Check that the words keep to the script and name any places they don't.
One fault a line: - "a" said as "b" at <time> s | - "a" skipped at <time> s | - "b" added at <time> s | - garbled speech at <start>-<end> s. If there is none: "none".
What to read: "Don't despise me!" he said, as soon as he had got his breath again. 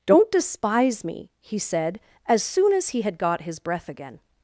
none